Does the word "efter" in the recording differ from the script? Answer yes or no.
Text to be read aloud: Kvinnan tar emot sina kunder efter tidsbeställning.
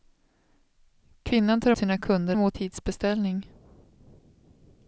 yes